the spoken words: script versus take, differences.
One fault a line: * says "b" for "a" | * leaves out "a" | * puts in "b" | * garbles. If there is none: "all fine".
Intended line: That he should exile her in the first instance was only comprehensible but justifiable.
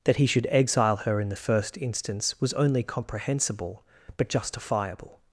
all fine